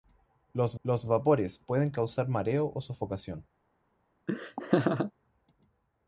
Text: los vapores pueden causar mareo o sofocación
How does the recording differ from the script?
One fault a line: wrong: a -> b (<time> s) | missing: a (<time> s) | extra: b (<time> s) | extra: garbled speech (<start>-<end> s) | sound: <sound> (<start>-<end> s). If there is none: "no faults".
extra: los (0.8 s)
sound: laugh (4.3-5.1 s)